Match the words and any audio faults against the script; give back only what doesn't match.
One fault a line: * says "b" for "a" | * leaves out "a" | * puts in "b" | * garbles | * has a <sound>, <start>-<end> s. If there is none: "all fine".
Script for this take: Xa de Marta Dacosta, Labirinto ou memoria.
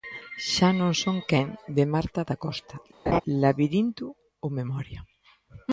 * puts in "non son quen"
* has a laugh, 3.1-3.2 s